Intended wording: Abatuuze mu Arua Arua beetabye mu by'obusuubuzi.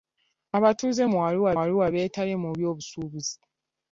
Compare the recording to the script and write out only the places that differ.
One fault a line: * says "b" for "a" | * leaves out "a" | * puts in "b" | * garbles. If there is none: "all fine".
all fine